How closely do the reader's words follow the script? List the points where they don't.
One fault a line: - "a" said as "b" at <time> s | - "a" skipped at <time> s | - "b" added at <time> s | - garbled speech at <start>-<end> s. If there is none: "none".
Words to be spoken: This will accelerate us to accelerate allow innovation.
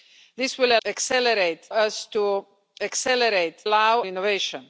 none